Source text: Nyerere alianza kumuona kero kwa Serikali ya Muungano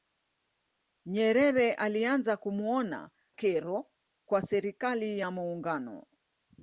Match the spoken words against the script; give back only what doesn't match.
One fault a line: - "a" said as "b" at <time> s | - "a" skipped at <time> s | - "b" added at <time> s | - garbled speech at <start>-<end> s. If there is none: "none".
none